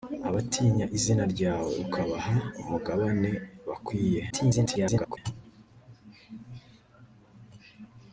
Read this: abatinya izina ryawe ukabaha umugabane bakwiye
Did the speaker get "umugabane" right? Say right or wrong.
right